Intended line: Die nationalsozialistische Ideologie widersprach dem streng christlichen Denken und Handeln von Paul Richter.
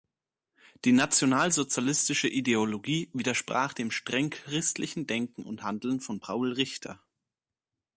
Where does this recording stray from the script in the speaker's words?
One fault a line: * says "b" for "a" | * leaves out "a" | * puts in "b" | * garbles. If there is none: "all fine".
all fine